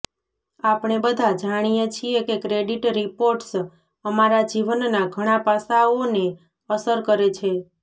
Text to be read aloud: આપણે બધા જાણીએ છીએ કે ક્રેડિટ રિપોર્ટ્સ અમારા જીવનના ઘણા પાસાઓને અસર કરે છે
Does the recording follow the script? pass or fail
pass